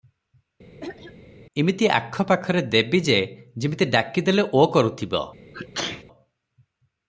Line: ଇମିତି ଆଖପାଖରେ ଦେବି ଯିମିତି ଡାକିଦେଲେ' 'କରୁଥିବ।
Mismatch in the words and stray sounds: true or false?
true